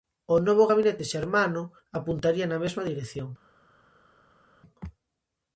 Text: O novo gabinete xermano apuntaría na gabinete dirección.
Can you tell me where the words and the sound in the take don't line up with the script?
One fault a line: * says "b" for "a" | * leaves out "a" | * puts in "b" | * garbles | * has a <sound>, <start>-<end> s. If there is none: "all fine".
* says "mesma" for "gabinete"